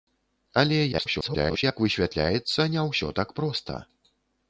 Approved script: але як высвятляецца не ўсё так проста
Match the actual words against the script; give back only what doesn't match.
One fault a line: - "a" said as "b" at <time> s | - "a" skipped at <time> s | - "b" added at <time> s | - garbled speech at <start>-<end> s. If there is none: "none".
- garbled speech at 0.9-1.6 s